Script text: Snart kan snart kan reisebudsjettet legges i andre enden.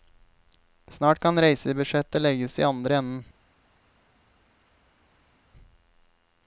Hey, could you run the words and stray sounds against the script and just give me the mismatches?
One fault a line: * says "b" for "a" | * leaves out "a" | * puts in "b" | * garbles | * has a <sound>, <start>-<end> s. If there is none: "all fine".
* leaves out "snart kan"